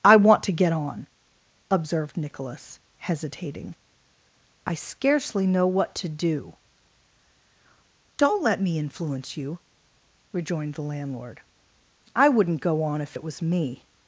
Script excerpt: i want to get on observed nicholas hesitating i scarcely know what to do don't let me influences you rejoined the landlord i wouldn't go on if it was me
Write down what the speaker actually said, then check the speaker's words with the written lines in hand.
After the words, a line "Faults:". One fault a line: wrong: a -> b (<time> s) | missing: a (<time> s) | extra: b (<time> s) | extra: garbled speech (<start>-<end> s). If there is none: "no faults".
i want to get on observed nicholas hesitating i scarcely know what to do don't let me influence you rejoined the landlord i wouldn't go on if it was me
Faults:
wrong: influences -> influence (8.8 s)